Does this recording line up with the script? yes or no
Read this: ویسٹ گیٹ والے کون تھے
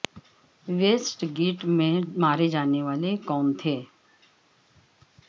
no